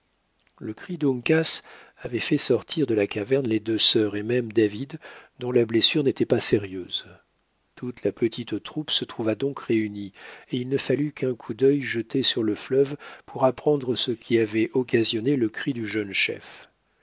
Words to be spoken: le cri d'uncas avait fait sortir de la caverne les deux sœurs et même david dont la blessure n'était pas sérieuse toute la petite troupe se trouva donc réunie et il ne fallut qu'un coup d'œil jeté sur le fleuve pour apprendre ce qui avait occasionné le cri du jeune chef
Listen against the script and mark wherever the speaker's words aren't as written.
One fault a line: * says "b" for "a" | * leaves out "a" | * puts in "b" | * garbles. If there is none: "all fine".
all fine